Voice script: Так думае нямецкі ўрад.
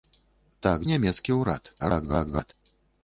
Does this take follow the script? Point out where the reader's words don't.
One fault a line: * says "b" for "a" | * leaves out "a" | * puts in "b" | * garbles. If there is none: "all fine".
* leaves out "думае"
* garbles